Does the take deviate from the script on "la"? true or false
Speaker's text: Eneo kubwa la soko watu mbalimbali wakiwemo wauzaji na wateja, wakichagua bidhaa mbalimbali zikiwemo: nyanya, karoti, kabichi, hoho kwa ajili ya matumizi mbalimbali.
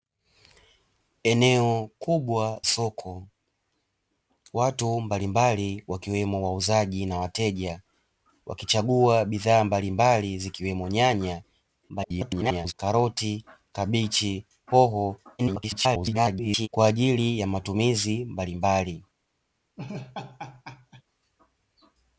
true